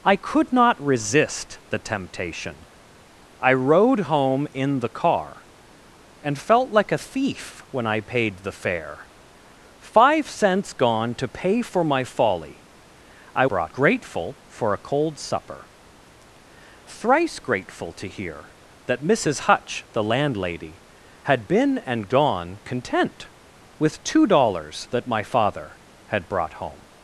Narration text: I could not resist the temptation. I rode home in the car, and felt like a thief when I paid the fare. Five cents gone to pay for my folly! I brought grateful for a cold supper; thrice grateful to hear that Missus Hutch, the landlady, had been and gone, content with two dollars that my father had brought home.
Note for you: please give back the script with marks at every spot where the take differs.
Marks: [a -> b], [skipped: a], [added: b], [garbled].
I could not resist the temptation. I rode home in the car, and felt like a thief when I paid the fare. Five cents gone to pay for my folly! I brought grateful for a cold supper; thrice grateful to hear that Missus Hutch, the landlady, had been and gone, content with two dollars that my father had brought home.